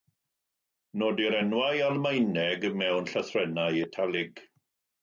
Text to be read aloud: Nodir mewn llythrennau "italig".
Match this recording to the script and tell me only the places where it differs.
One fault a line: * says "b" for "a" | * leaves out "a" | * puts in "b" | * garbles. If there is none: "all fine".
* puts in "enwau Almaeneg"